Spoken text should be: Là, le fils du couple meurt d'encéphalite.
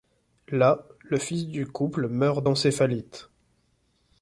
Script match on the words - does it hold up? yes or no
yes